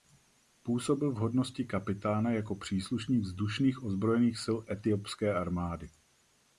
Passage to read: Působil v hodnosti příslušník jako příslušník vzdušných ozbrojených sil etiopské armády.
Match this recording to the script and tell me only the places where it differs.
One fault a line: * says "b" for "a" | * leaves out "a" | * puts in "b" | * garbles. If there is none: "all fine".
* says "kapitána" for "příslušník"